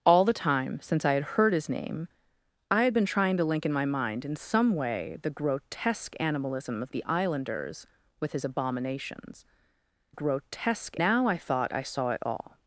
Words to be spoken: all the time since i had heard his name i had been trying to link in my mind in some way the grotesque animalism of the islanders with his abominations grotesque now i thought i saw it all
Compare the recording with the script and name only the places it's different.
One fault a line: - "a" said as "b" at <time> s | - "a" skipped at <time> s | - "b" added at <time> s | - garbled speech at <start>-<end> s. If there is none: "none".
none